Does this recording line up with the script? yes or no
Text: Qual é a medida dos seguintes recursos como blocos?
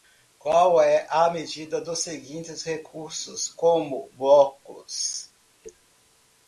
yes